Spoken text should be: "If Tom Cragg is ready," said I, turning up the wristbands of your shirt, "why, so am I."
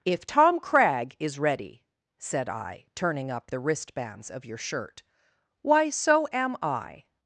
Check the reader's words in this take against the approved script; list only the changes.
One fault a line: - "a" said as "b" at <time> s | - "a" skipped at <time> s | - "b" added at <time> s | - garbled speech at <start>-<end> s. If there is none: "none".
none